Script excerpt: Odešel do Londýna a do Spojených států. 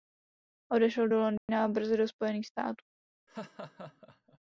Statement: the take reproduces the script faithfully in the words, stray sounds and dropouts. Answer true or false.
false